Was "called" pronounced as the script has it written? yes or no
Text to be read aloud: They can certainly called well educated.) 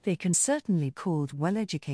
yes